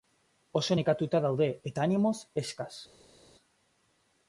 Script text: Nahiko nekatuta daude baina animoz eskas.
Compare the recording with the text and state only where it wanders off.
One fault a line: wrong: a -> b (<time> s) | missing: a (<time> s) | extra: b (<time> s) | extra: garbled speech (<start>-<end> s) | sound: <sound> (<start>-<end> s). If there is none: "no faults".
wrong: Nahiko -> Oso (0.6 s)
wrong: baina -> eta (1.7 s)